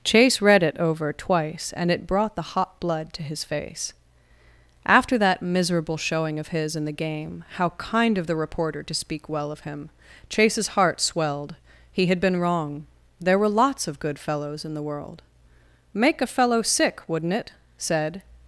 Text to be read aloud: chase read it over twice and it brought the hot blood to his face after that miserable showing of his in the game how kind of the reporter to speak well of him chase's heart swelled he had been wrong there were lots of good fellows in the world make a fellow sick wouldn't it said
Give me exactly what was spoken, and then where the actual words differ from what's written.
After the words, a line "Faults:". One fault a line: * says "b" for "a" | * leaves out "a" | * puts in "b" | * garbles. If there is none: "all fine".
chase read it over twice and it brought the hot blood to his face after that miserable showing of his in the game how kind of the reporter to speak well of him chase's heart swelled he had been wrong there were lots of good fellows in the world make a fellow sick wouldn't it said
Faults:
all fine